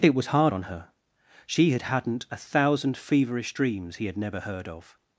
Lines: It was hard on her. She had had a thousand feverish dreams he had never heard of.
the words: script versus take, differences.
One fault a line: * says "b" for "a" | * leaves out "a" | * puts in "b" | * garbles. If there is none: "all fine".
* says "hadn't" for "had"